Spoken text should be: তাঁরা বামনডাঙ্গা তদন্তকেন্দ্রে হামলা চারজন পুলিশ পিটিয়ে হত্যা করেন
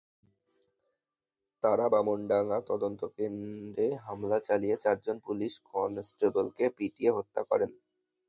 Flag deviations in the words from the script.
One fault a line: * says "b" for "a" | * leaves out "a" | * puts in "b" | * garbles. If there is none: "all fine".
* puts in "চালিয়ে"
* puts in "কনস্টেবলকে"